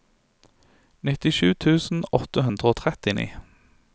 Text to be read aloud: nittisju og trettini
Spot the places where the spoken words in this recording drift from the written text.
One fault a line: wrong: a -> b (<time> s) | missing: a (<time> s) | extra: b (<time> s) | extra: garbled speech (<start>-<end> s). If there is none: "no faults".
extra: tusen åtte hundre (1.6 s)